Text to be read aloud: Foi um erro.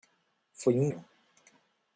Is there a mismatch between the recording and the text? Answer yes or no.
no